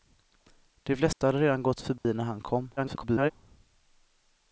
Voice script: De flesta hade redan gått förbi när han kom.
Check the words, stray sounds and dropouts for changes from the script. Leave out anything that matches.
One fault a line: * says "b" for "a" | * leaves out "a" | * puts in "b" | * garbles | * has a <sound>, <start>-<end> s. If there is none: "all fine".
* has a dropout, 1.1-1.2 s
* has a dropout, 2.0-2.0 s
* garbles